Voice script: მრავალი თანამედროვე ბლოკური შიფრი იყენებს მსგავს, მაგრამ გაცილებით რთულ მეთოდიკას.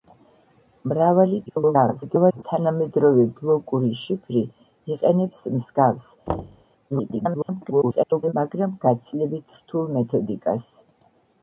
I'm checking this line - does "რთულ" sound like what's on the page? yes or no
yes